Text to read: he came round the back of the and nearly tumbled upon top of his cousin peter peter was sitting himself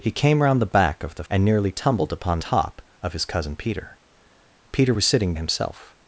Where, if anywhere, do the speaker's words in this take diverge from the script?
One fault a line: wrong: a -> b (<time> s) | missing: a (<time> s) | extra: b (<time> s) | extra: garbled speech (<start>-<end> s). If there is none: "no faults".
no faults